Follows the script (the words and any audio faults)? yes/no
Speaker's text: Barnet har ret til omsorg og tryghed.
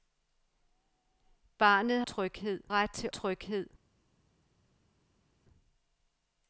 no